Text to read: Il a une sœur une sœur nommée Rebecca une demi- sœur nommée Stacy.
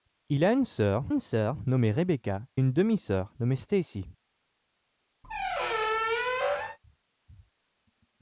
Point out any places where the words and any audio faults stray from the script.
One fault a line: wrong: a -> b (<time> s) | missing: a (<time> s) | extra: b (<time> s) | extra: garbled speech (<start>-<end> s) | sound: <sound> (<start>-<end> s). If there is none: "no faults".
sound: squeak (5.2-6.8 s)